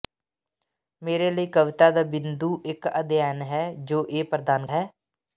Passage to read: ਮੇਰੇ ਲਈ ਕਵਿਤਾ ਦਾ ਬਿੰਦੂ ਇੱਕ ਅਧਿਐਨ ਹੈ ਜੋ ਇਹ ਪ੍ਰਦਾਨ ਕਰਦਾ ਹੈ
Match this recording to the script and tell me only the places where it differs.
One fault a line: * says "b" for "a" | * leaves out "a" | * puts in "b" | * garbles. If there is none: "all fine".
* leaves out "ਕਰਦਾ"